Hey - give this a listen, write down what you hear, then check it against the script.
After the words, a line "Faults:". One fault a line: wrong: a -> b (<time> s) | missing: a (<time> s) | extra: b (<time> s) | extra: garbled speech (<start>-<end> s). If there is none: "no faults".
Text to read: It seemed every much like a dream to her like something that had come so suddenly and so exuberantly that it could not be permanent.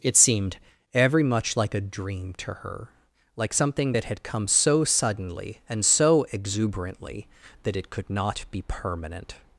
It seemed every much like a dream to her like something that had come so suddenly and so exuberantly that it could not be permanent.
Faults:
no faults